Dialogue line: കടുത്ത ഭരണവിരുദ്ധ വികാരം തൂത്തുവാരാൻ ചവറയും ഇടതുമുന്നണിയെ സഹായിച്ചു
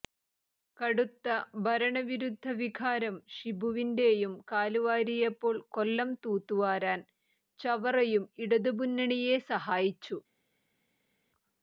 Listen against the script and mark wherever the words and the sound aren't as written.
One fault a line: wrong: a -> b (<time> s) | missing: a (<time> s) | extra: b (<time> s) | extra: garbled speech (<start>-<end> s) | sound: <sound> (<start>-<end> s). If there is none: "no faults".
extra: ഷിബുവിന്റെയും കാലുവാരിയപ്പോൾ കൊല്ലം (3.3 s)